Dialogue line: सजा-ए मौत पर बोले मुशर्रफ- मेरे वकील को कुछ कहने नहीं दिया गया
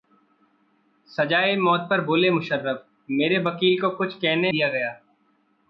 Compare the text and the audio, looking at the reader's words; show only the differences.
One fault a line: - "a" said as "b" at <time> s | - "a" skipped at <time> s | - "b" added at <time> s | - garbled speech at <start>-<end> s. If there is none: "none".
- "नहीं" skipped at 4.5 s